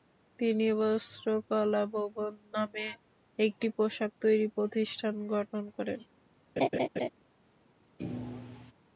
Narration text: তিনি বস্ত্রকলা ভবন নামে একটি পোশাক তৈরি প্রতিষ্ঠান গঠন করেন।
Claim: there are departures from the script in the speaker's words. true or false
false